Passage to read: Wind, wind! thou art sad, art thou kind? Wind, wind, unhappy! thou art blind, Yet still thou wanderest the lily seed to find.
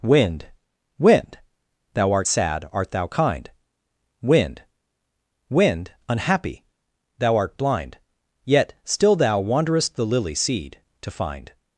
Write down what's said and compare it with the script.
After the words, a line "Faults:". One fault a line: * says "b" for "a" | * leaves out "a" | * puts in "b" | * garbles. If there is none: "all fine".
Wind, wind! thou art sad, art thou kind? Wind, wind, unhappy! thou art blind, Yet still thou wanderest the lily seed to find.
Faults:
all fine